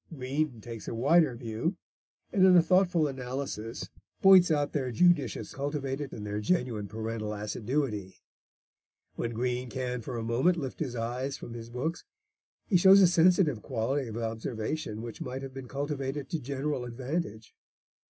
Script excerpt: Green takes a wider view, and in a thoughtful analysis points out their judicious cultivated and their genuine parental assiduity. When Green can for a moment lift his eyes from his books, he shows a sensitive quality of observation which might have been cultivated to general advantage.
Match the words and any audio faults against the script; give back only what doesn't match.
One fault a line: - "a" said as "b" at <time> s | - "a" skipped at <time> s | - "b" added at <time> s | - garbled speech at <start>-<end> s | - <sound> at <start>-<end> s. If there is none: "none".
none